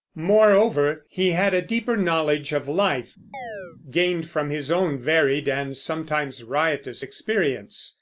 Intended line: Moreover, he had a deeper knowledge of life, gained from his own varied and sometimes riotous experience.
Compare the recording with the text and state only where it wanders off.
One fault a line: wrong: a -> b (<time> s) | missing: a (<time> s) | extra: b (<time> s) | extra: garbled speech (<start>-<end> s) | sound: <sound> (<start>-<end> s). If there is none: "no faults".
sound: chirp (3.3-3.8 s)